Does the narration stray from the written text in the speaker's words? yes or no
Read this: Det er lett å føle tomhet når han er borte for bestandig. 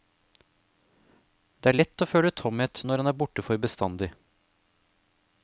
no